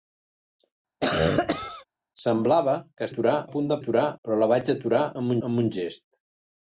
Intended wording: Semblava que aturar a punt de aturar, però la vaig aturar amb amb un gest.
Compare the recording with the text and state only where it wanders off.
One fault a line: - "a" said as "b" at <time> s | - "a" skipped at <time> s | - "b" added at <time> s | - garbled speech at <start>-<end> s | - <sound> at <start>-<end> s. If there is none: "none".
- cough at 1.0-1.8 s